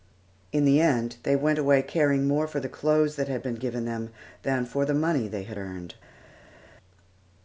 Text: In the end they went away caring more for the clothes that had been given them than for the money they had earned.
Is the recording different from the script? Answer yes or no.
no